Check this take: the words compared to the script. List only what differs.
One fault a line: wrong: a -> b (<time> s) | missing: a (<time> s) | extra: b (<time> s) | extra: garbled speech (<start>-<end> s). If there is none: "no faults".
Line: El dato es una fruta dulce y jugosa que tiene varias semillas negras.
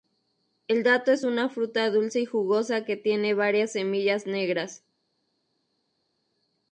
no faults